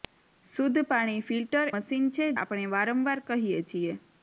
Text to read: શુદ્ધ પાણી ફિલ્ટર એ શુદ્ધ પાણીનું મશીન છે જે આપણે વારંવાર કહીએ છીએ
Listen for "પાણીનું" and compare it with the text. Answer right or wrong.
wrong